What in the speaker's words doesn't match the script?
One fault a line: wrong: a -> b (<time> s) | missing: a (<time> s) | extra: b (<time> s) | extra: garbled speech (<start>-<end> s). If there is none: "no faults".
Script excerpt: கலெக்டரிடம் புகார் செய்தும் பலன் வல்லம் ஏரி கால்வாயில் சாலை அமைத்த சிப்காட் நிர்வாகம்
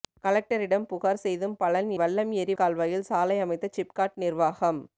no faults